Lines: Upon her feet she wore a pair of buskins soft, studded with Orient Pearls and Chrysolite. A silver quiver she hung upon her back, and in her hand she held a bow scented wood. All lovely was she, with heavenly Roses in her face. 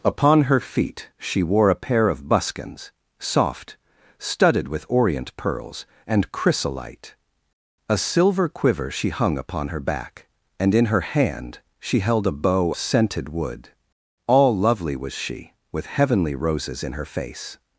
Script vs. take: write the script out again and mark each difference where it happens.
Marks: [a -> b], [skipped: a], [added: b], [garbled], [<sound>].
Upon her feet she wore a pair of buskins soft, studded with Orient Pearls and Chrysolite. A silver quiver she hung upon her back, and in her hand she held a bow scented wood. All lovely was she, with heavenly Roses in her face.